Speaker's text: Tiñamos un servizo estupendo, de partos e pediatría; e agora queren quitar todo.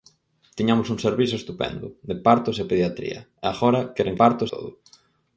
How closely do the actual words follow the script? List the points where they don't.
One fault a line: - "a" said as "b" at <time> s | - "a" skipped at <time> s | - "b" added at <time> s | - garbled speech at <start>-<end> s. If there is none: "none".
- "quitar" said as "partos" at 4.2 s